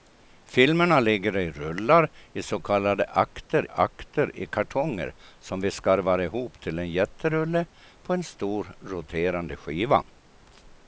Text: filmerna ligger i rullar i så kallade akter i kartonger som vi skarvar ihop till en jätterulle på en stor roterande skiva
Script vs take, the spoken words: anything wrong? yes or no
yes